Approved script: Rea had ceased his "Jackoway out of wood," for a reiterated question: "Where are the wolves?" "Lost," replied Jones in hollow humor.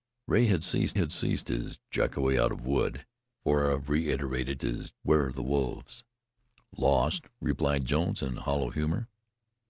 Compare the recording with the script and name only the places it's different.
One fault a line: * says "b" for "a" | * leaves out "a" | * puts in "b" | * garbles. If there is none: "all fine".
* puts in "had ceased"
* says "his" for "question"